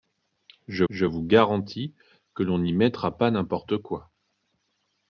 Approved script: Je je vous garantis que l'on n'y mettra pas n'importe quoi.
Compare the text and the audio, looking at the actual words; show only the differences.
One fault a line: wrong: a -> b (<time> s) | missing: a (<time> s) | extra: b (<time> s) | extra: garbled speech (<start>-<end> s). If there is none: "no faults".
no faults